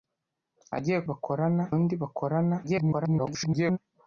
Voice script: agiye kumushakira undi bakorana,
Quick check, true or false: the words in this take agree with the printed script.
false